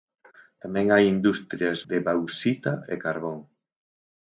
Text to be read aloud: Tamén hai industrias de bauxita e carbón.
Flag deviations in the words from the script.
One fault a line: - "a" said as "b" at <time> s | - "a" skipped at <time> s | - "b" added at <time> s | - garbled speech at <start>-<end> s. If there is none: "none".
none